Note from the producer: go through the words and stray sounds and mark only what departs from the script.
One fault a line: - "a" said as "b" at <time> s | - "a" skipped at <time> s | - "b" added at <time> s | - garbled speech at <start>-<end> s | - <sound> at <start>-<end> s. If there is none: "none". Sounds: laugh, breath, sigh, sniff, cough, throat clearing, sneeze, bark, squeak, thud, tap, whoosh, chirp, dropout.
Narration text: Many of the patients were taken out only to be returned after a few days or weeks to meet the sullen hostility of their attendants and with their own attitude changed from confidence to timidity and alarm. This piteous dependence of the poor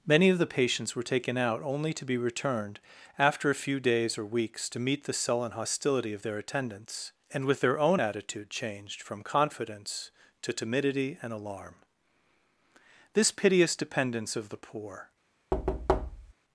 - thud at 15.5-16.3 s